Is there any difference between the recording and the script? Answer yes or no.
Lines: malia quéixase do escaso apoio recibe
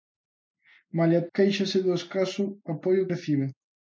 no